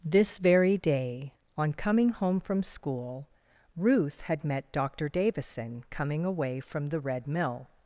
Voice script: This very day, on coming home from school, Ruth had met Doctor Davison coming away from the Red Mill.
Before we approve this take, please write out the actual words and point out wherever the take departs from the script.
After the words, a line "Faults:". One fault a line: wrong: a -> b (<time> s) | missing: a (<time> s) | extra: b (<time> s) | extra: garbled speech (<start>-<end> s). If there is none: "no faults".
This very day, on coming home from school, Ruth had met Doctor Davison coming away from the Red Mill.
Faults:
no faults